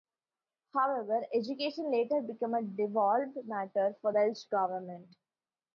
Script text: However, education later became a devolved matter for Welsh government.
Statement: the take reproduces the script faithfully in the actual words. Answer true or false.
true